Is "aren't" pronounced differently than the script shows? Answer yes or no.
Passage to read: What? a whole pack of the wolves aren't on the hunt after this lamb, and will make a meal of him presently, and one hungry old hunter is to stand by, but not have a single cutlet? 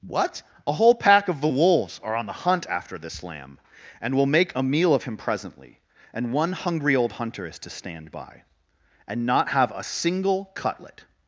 yes